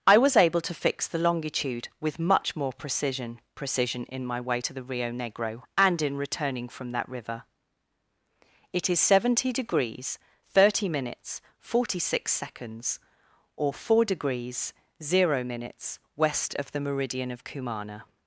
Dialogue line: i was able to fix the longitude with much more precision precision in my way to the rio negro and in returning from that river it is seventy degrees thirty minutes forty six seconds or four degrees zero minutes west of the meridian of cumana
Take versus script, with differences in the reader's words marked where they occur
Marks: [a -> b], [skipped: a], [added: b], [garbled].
i was able to fix the longitude with much more precision precision in my way to the rio negro and in returning from that river it is seventy degrees thirty minutes forty six seconds or four degrees zero minutes west of the meridian of cumana